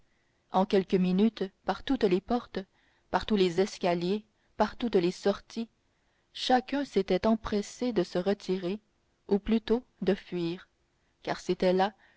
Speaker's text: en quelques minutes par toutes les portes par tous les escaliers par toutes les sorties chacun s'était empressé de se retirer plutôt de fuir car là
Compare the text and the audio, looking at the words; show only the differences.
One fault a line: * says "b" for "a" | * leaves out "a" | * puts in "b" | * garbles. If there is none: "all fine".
* puts in "ou"
* puts in "c'était"